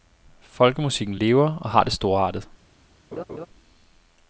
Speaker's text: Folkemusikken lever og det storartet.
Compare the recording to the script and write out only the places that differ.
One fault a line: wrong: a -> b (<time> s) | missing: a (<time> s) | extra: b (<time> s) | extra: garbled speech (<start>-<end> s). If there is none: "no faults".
extra: har (1.7 s)